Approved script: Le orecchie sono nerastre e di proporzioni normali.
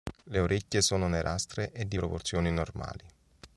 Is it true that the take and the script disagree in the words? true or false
false